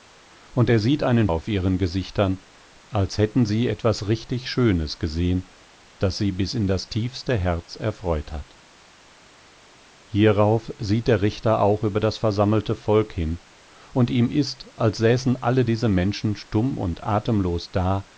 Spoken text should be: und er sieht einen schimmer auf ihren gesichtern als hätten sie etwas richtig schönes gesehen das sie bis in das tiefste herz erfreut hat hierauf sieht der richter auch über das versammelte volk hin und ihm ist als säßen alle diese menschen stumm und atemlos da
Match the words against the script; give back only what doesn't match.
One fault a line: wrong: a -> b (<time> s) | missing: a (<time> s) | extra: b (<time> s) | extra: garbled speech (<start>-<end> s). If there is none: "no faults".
missing: schimmer (1.3 s)